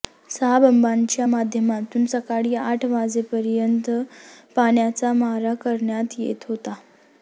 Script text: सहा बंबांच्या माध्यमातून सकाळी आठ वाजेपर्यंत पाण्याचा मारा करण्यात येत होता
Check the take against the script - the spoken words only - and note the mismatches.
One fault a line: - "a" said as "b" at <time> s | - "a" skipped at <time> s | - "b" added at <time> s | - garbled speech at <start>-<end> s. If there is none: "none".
none